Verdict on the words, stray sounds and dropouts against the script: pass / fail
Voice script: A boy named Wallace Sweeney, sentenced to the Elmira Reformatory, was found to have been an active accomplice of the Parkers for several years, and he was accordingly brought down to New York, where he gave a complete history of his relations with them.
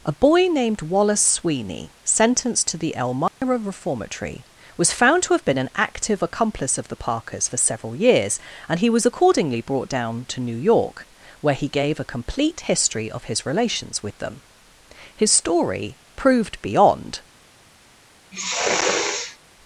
fail